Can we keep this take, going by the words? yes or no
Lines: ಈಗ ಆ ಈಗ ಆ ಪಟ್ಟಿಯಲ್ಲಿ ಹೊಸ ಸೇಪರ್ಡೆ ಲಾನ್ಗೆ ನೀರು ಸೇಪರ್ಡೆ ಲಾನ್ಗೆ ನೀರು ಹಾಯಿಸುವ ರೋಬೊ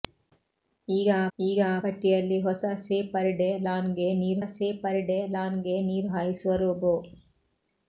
yes